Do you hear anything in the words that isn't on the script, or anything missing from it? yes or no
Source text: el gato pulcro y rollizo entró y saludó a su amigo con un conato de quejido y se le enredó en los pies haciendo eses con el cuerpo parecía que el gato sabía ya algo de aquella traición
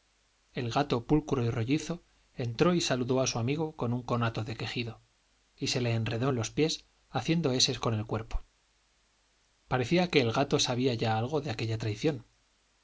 no